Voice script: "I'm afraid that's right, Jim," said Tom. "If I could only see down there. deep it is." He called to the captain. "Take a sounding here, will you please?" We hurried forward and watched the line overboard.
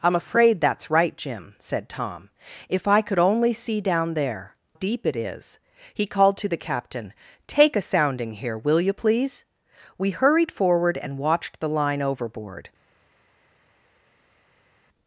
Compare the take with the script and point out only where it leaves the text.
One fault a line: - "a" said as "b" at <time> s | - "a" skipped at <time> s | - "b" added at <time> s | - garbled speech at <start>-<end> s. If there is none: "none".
none